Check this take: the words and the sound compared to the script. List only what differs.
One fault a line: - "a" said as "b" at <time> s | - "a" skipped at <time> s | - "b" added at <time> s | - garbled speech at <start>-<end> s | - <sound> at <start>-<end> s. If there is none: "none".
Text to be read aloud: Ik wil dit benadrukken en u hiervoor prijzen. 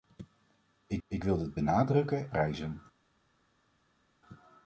- "ik" added at 1.1 s
- "en u hiervoor" skipped at 2.3 s